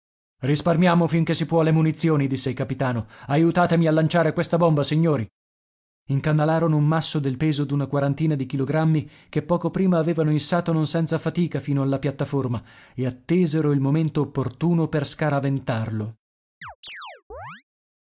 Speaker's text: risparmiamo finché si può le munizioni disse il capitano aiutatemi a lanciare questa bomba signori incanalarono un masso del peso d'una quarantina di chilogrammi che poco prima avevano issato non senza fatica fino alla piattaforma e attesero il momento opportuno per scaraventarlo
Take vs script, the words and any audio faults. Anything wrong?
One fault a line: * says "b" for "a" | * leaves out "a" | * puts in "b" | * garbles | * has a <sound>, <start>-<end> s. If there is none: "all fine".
* has a chirp, 16.6-17.6 s